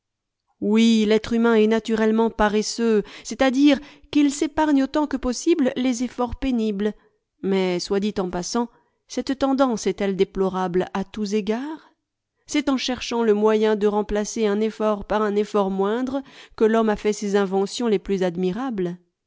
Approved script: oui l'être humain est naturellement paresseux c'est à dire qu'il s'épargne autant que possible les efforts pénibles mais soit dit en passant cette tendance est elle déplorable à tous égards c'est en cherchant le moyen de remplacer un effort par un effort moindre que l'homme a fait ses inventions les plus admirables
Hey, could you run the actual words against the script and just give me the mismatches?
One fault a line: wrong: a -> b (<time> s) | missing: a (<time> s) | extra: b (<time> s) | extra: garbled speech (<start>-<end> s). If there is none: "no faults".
no faults